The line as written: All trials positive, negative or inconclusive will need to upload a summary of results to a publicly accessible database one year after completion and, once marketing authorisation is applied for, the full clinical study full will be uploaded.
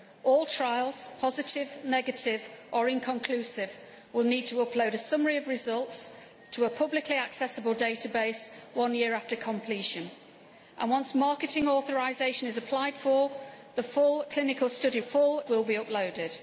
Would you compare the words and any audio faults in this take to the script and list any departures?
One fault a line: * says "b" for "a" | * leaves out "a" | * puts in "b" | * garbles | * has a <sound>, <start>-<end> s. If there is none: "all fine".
all fine